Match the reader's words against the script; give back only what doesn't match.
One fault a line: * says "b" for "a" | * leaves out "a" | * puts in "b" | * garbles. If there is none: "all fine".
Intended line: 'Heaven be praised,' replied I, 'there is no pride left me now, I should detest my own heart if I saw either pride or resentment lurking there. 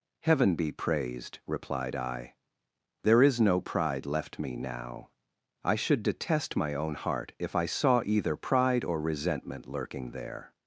all fine